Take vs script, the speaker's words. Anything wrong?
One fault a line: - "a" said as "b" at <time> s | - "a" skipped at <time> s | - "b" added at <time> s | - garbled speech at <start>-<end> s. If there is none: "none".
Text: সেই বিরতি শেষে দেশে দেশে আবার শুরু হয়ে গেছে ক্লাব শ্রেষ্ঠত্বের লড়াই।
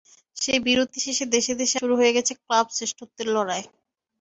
- "আবার" skipped at 1.8 s